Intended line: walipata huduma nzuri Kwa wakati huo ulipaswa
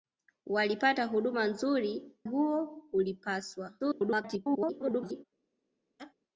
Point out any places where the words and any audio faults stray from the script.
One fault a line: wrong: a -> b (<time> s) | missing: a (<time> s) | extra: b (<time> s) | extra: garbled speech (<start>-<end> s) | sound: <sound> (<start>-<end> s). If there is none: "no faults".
missing: Kwa wakati (2.1 s)
extra: garbled speech (3.8-5.2 s)
sound: laugh (6.0-6.1 s)